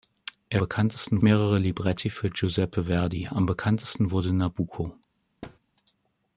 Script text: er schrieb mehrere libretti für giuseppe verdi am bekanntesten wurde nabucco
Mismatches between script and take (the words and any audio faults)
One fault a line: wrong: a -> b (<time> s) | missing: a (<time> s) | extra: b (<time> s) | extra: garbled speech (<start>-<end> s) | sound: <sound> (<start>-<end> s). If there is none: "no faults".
wrong: schrieb -> bekanntesten (0.6 s)
sound: thud (5.4-5.6 s)